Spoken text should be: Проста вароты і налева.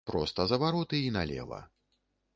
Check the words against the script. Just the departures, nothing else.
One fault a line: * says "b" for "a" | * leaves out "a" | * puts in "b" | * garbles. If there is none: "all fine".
* puts in "за"